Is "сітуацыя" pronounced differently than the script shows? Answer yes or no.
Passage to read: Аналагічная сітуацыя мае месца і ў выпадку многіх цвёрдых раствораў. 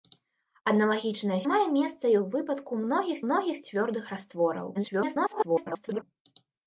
yes